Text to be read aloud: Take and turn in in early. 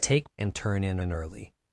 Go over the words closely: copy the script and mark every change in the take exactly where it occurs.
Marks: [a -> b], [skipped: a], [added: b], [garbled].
Take and turn in in early.